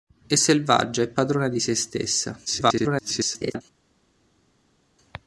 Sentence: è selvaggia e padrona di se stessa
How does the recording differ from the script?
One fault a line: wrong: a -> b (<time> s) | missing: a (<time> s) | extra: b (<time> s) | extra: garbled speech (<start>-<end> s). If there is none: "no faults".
extra: garbled speech (2.5-3.6 s)